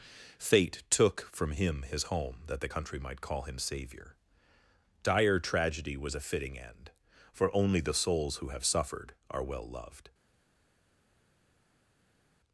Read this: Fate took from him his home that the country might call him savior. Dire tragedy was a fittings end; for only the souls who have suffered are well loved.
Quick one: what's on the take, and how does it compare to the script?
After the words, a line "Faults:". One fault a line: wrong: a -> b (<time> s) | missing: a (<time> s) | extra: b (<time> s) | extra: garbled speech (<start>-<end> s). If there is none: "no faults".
Fate took from him his home that the country might call him savior. Dire tragedy was a fitting end; for only the souls who have suffered are well loved.
Faults:
wrong: fittings -> fitting (6.2 s)